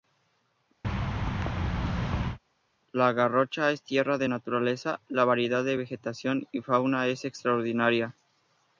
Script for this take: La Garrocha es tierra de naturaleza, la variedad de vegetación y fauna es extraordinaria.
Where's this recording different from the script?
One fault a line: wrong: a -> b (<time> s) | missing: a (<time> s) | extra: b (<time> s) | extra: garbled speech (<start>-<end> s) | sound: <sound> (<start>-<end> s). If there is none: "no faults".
sound: thud (0.8-2.4 s)